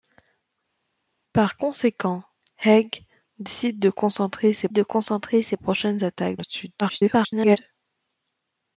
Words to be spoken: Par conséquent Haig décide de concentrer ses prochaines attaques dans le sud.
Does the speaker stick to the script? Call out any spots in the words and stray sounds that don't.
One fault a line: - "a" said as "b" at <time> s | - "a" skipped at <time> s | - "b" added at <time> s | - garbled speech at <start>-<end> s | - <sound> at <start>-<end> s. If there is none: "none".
- "de concentrer ses" added at 4.7 s
- "dans" skipped at 6.4 s
- garbled speech at 6.8-7.6 s